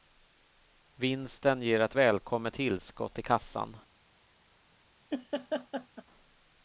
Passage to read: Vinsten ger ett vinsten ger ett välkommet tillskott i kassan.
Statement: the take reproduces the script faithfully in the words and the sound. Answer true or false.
false